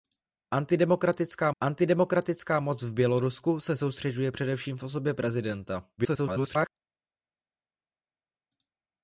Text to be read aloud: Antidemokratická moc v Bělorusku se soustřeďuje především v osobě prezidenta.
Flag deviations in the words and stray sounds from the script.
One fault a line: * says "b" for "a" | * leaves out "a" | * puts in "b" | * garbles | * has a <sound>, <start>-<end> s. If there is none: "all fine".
* puts in "antidemokratická"
* garbles